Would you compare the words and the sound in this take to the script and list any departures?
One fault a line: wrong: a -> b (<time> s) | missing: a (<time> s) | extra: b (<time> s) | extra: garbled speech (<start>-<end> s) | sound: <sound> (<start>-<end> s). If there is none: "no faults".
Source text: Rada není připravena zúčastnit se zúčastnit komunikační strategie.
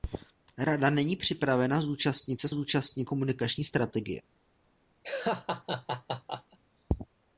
sound: laugh (5.0-6.6 s)